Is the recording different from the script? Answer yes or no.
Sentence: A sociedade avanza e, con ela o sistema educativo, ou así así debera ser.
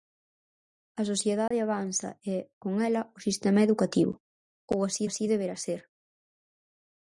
no